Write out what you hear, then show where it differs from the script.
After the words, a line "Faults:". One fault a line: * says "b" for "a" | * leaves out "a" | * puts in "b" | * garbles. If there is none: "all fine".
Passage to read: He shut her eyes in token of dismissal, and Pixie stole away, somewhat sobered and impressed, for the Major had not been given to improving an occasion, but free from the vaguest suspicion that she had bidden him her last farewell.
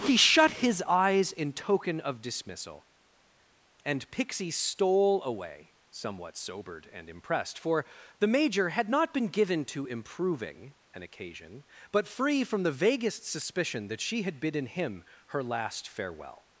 He shut his eyes in token of dismissal, and Pixie stole away, somewhat sobered and impressed, for the Major had not been given to improving an occasion, but free from the vaguest suspicion that she had bidden him her last farewell.
Faults:
* says "his" for "her"